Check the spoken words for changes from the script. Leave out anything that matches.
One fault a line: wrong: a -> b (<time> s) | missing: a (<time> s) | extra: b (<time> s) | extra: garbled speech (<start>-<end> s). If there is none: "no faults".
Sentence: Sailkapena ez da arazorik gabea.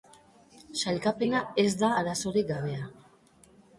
no faults